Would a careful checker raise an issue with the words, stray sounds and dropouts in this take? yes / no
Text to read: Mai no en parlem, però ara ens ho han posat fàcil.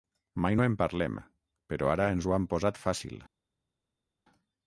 no